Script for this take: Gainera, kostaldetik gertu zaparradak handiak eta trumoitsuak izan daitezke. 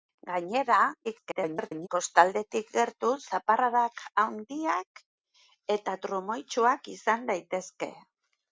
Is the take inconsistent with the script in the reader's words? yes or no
yes